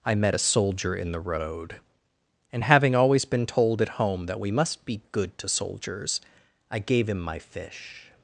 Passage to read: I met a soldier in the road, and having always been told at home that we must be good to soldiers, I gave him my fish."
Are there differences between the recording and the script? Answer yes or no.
no